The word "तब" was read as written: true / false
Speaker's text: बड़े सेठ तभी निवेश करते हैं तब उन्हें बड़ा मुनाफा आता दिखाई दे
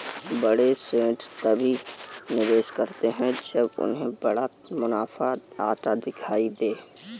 false